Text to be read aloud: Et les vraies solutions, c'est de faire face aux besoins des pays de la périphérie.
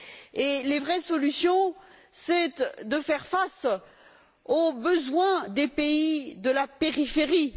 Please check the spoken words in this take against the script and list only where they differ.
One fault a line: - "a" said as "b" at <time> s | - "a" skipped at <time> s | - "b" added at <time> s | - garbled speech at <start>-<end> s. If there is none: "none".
none